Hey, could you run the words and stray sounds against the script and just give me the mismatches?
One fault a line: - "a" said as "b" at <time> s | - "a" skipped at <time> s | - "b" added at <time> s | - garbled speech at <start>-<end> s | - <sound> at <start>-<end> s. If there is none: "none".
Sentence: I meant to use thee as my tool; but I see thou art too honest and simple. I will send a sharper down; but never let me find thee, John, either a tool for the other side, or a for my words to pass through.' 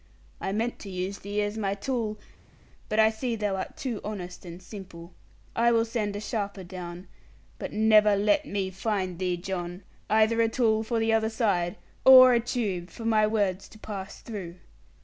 - "tube" added at 12.4 s